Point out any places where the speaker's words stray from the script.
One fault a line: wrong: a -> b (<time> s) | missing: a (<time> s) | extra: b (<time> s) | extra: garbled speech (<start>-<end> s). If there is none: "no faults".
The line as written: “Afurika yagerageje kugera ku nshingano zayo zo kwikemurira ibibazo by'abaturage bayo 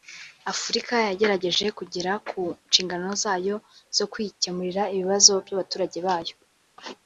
no faults